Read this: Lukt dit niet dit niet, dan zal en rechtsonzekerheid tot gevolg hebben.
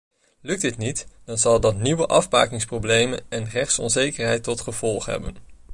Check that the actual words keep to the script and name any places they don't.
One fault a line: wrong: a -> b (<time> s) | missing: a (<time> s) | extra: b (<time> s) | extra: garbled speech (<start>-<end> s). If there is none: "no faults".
wrong: dit niet dan zal -> dan zal dat nieuwe afbakeningsproblemen (1.2 s)